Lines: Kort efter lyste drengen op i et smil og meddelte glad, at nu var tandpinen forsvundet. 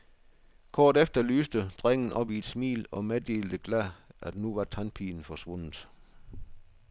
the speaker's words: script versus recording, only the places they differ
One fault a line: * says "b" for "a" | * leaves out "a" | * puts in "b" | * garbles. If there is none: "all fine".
all fine